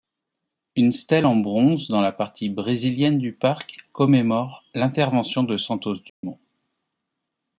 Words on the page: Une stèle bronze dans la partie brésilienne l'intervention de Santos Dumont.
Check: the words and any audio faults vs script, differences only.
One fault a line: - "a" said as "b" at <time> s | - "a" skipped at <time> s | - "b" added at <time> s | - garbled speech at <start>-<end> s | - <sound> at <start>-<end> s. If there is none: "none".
- "en" added at 1.3 s
- "du parc commémore" added at 3.2 s
- dropout at 6.1-6.2 s